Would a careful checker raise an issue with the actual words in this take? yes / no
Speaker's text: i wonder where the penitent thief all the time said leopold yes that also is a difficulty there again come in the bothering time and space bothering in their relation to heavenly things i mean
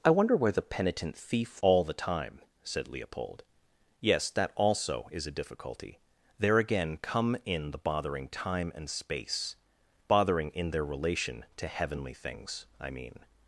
no